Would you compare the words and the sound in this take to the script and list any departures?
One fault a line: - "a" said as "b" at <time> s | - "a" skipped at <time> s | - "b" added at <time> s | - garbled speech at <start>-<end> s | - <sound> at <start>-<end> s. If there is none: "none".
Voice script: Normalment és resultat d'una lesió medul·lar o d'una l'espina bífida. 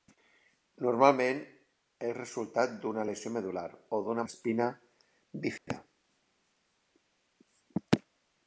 - dropout at 5.6-5.7 s